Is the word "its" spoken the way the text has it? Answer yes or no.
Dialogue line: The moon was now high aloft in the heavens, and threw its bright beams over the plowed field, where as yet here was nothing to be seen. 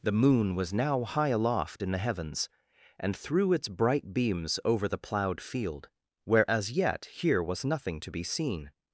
yes